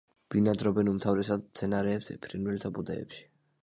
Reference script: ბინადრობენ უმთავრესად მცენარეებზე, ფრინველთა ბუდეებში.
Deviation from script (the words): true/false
false